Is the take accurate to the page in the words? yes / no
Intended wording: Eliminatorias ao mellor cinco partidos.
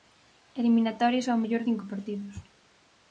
yes